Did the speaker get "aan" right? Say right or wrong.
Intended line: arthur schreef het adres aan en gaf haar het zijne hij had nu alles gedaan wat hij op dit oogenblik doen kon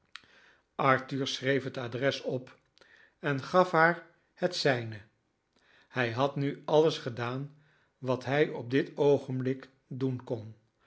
wrong